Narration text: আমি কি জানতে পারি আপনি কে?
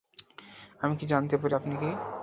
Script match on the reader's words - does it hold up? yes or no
yes